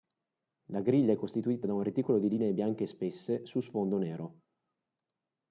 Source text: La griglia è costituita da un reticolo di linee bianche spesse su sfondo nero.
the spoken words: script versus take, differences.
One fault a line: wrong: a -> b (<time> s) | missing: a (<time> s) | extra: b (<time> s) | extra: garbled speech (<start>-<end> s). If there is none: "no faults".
no faults